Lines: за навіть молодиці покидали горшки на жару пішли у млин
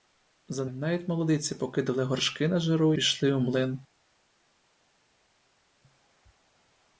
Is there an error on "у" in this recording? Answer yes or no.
no